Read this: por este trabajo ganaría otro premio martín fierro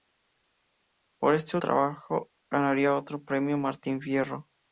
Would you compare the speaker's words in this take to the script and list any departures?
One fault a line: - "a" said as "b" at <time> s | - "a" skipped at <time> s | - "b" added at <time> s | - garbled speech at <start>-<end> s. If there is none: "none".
none